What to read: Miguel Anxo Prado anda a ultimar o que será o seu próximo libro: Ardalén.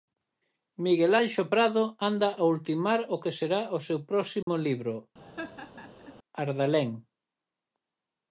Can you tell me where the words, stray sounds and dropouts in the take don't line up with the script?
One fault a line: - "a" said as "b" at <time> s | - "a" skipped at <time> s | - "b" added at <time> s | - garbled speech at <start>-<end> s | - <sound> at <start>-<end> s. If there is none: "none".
- dropout at 4.4-4.5 s
- laugh at 5.2-6.1 s